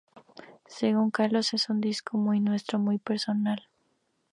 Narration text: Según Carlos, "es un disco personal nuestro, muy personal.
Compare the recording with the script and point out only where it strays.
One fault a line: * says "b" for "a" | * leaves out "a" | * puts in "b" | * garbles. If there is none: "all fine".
* says "muy" for "personal"